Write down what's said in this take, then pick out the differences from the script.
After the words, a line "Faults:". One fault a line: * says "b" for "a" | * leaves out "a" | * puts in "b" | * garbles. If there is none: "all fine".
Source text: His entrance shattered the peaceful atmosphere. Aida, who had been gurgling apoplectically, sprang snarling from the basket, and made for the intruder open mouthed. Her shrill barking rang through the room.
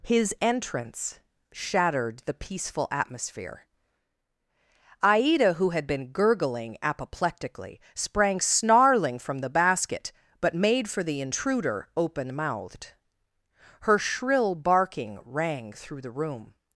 His entrance shattered the peaceful atmosphere. Aida, who had been gurgling apoplectically, sprang snarling from the basket, but made for the intruder open mouthed. Her shrill barking rang through the room.
Faults:
* says "but" for "and"